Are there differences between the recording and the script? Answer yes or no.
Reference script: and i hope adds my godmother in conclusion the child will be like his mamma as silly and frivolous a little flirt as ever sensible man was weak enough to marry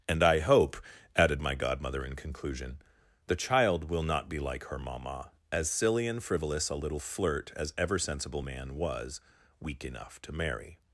yes